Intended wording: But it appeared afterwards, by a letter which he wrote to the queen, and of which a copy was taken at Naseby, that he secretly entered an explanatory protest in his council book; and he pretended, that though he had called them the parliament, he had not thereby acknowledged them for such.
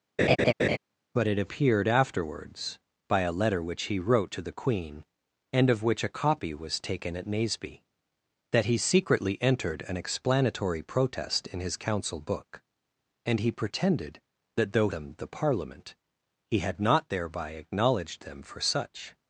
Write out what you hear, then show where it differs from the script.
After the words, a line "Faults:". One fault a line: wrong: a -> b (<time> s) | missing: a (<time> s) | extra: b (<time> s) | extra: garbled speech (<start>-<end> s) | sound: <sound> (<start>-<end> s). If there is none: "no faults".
But it appeared afterwards, by a letter which he wrote to the queen, and of which a copy was taken at Naseby, that he secretly entered an explanatory protest in his council book; and he pretended, that though them the parliament, he had not thereby acknowledged them for such.
Faults:
sound: laugh (0.2-0.8 s)
missing: he had called (14.9 s)